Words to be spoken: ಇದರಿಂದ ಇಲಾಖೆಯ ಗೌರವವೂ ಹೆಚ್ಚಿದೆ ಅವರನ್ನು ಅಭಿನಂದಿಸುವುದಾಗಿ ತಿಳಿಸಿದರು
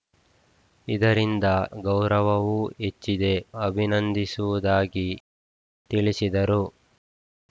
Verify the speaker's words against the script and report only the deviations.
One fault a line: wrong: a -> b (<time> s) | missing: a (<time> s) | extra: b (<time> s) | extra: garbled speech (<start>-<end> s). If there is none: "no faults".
missing: ಇಲಾಖೆಯ (1.4 s)
missing: ಅವರನ್ನು (3.3 s)